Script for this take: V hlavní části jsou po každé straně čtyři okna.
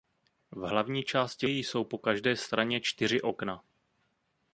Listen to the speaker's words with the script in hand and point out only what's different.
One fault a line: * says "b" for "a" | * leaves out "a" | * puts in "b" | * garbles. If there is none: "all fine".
all fine